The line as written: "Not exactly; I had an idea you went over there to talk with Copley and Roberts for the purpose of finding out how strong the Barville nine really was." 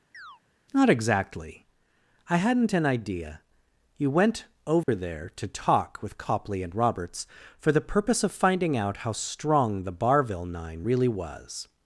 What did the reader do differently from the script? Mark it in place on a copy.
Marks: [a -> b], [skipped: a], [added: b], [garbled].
"Not exactly; I [had -> hadn't] an idea you went over there to talk with Copley and Roberts for the purpose of finding out how strong the Barville nine really was."